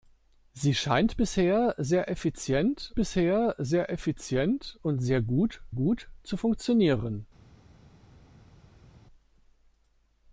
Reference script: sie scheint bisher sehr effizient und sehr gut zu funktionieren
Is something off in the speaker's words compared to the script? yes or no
yes